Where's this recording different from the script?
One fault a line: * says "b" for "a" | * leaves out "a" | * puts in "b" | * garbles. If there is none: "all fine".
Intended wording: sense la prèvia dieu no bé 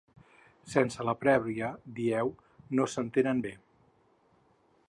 * puts in "s'entenen"